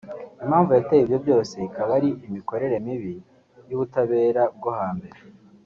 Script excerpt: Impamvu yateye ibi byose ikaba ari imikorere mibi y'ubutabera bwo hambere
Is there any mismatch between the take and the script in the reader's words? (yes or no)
yes